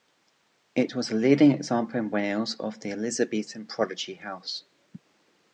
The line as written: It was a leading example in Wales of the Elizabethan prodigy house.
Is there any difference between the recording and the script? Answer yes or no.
no